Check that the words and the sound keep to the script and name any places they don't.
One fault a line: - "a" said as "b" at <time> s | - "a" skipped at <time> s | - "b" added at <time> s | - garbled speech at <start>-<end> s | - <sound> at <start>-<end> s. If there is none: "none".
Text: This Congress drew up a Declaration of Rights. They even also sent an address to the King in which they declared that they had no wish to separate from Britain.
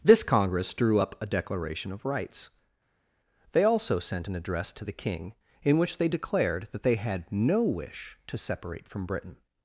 - "even" skipped at 3.6 s